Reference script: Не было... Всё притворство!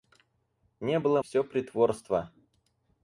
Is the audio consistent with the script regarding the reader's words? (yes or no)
yes